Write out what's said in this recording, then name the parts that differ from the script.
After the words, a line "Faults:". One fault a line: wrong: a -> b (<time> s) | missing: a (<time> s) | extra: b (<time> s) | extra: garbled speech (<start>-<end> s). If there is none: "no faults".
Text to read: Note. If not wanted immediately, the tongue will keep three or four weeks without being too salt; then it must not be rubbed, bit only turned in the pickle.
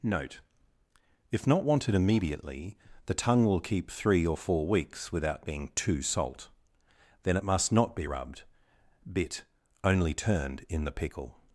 Note. If not wanted immediately, the tongue will keep three or four weeks without being too salt; then it must not be rubbed, bit only turned in the pickle.
Faults:
no faults